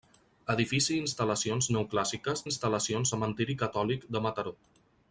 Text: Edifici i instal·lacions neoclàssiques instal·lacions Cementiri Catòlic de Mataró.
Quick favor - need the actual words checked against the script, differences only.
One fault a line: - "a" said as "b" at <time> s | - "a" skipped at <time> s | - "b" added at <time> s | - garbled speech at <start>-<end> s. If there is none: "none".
none